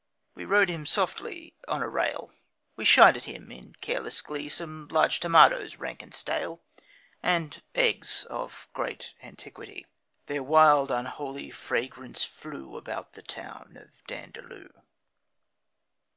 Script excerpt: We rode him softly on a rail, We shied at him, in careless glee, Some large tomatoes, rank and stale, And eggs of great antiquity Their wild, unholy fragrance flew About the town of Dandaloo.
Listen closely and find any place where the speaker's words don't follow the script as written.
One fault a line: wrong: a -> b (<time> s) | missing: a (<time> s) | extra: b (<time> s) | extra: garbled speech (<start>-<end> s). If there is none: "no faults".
no faults